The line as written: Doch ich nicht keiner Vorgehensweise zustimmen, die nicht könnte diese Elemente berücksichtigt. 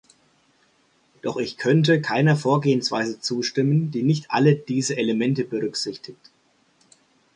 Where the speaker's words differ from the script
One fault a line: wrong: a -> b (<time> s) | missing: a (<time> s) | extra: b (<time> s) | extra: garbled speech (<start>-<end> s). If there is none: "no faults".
wrong: nicht -> könnte (1.6 s)
wrong: könnte -> alle (4.3 s)